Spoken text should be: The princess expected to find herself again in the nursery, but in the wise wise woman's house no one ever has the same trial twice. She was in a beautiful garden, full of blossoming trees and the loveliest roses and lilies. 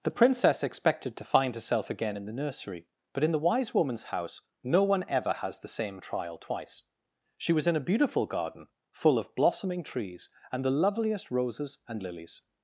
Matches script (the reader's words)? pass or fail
fail